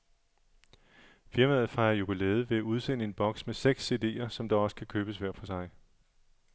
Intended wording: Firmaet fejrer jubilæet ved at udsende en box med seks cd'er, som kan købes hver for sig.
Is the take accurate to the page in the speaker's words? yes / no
no